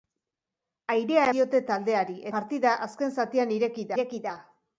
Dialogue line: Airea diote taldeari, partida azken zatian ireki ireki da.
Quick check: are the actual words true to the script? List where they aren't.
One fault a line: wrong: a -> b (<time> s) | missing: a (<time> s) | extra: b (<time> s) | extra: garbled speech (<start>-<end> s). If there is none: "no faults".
no faults